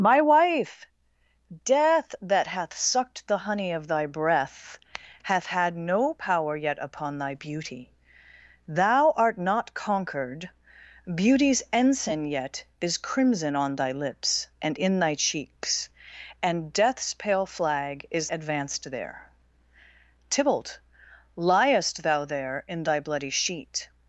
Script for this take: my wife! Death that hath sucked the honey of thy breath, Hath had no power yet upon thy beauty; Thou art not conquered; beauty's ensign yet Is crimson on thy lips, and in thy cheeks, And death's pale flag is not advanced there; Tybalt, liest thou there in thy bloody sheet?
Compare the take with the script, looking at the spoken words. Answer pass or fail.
fail